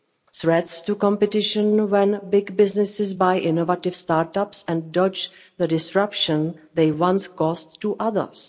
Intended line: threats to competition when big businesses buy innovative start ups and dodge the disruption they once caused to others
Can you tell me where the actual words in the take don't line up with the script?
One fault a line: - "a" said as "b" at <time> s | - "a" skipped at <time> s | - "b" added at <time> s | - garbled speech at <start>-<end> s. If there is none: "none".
none